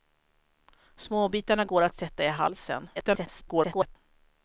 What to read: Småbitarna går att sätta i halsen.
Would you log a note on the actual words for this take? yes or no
yes